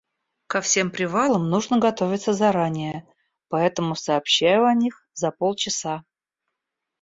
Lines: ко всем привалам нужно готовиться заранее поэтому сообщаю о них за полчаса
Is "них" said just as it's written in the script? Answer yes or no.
yes